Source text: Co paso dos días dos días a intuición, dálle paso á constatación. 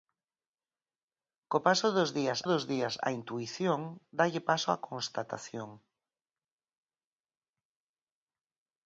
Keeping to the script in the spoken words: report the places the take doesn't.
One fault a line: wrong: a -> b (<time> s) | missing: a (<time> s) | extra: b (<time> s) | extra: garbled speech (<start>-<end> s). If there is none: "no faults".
no faults